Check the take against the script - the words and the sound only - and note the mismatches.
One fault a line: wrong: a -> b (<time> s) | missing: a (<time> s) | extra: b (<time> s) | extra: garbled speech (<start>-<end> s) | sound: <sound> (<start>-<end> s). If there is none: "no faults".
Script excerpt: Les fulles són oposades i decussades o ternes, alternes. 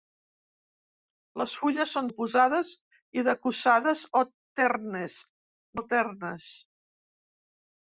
no faults